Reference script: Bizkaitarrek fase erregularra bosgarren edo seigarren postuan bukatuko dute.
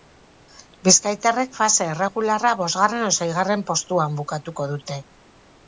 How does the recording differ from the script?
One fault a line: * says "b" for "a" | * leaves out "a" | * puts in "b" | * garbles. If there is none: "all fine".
all fine